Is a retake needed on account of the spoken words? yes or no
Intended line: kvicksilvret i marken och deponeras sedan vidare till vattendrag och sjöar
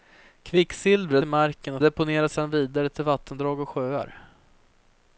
no